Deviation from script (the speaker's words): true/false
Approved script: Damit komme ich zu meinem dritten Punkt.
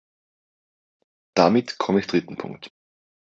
true